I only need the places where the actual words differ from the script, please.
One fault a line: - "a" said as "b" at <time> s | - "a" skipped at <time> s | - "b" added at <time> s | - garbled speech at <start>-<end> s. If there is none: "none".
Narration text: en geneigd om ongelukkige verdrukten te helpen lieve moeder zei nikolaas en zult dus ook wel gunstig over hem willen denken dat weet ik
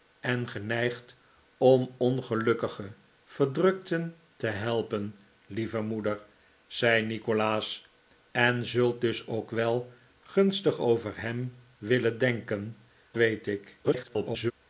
- "dat" skipped at 12.8 s
- garbled speech at 13.8-14.5 s